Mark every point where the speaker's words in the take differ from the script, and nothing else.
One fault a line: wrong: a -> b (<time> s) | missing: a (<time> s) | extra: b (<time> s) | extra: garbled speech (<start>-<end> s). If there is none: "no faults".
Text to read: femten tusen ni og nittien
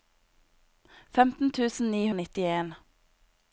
no faults